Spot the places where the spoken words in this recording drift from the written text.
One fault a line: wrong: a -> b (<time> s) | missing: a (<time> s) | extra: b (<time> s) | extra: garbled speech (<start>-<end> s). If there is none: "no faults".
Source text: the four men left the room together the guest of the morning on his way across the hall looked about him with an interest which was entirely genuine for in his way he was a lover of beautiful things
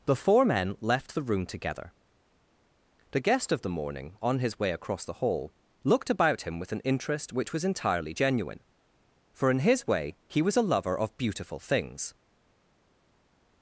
no faults